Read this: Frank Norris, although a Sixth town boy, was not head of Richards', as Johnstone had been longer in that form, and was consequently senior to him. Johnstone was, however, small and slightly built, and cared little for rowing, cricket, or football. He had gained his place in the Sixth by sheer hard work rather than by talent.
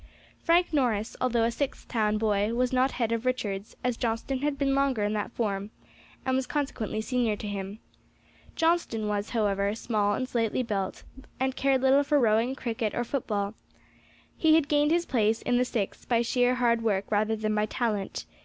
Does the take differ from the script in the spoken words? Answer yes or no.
no